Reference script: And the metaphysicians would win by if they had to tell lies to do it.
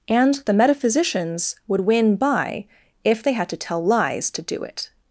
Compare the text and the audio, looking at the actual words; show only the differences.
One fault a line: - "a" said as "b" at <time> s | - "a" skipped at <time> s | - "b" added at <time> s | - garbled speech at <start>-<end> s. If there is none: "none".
none